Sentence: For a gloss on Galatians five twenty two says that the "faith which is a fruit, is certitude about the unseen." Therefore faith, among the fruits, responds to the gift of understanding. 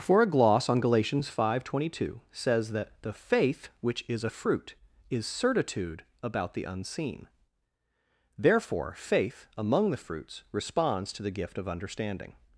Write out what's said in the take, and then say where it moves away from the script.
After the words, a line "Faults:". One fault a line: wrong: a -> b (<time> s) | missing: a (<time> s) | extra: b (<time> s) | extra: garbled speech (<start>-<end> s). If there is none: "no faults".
For a gloss on Galatians five twenty two says that the "faith which is a fruit, is certitude about the unseen." Therefore faith, among the fruits, responds to the gift of understanding.
Faults:
no faults